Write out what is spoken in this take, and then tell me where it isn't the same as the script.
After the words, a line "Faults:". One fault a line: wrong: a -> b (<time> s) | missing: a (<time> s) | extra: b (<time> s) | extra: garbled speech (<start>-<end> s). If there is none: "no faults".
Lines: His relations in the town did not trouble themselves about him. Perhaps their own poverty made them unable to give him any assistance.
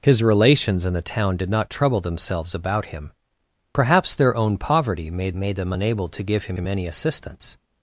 His relations in the town did not trouble themselves about him. Perhaps their own poverty made made them unable to give him him any assistance.
Faults:
extra: made (5.3 s)
extra: him (6.5 s)